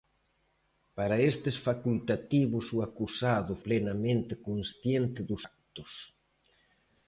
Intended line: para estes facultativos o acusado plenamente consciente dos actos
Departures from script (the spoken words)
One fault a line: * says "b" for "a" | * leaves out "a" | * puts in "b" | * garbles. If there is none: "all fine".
all fine